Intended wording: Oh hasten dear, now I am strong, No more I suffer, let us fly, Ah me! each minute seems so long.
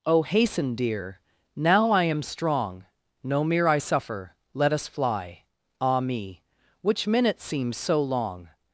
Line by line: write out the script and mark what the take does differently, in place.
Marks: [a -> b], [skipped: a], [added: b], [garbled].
Oh hasten dear, now I am strong, No [more -> mere] I suffer, let us fly, Ah me! [each -> which] minute seems so long.